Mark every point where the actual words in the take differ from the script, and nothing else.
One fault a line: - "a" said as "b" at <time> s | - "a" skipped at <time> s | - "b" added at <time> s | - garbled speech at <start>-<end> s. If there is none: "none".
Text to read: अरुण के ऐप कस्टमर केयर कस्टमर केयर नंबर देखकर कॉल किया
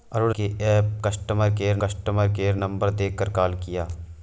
none